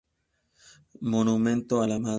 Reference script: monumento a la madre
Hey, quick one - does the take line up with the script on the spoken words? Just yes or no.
yes